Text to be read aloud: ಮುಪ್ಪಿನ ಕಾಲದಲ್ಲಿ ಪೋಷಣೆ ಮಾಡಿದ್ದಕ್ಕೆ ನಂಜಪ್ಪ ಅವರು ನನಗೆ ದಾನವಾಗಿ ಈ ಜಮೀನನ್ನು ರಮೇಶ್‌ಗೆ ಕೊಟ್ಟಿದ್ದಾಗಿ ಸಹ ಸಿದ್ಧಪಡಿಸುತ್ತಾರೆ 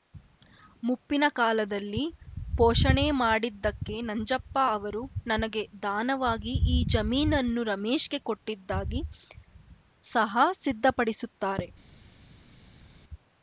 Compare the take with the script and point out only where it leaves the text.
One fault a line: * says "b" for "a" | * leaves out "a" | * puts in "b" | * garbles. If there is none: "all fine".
all fine